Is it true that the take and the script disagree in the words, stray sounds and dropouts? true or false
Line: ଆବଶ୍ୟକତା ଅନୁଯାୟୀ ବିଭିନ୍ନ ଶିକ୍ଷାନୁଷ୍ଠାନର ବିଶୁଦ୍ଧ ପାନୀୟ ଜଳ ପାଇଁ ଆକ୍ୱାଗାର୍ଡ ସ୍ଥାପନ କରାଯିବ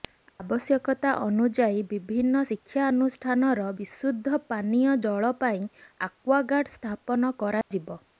true